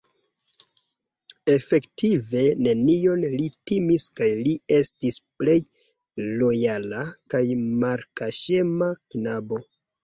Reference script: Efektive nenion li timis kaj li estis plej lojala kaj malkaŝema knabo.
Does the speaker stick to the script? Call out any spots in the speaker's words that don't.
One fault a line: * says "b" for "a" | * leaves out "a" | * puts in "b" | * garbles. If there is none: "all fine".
all fine